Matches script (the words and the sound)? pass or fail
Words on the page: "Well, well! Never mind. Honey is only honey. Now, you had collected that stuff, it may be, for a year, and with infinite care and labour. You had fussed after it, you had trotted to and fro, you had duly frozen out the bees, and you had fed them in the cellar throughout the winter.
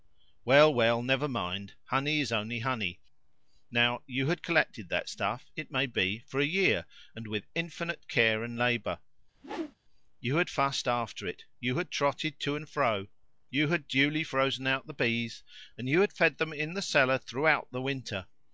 fail